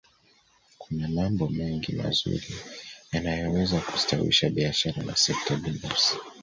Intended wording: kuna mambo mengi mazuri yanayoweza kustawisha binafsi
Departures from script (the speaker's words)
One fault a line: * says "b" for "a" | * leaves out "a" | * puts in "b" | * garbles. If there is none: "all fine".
* puts in "biashara na sekta"